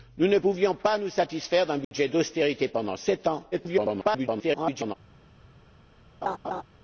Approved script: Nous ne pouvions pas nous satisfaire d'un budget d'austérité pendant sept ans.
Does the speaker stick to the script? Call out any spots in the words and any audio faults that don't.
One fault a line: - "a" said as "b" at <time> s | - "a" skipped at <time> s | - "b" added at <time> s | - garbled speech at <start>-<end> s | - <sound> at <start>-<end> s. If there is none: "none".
- dropout at 1.8-1.9 s
- garbled speech at 3.5-4.9 s
- laugh at 6.2-6.6 s